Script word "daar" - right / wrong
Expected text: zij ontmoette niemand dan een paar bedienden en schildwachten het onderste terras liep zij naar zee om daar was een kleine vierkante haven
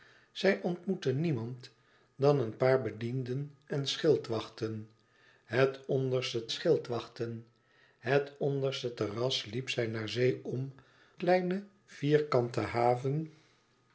wrong